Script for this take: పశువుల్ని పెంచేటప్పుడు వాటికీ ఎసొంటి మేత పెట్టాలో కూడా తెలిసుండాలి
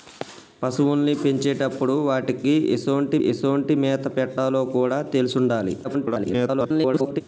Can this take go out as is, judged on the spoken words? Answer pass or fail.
fail